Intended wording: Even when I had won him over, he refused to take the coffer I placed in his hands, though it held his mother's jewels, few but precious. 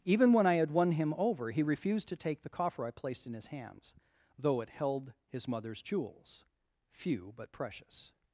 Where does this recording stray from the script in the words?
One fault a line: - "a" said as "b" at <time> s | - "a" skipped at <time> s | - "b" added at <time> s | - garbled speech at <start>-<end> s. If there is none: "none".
none